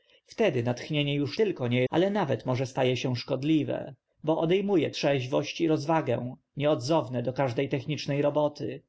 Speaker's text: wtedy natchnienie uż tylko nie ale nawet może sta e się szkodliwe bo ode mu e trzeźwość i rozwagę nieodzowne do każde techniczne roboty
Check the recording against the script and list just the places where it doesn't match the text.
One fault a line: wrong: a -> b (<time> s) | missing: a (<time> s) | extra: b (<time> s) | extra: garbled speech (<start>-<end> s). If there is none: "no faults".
no faults